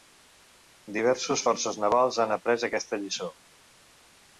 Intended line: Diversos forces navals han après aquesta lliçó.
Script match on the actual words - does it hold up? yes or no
yes